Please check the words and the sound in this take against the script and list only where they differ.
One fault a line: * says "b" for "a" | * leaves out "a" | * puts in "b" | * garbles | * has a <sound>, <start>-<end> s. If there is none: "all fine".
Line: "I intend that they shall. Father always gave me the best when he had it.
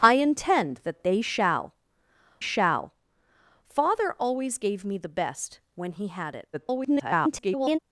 * puts in "shall"
* garbles